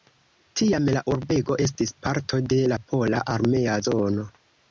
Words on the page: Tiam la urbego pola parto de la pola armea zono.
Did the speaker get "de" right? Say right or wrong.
right